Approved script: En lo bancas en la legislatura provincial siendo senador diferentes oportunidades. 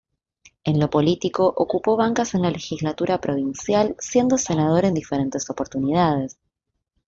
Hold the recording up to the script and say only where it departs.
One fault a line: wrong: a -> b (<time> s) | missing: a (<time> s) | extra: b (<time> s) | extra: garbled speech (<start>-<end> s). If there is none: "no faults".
extra: político ocupó (0.9 s)
extra: en (4.8 s)